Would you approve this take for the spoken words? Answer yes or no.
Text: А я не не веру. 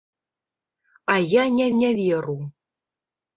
yes